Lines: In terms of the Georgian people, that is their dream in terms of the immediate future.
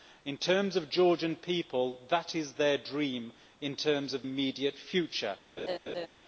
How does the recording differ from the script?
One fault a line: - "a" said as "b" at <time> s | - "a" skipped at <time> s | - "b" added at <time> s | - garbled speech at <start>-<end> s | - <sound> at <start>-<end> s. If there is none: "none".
- "the" skipped at 4.2 s
- laugh at 5.6-6.1 s